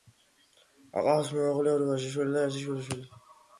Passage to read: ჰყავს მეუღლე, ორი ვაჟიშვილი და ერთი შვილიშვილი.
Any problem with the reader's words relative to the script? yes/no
no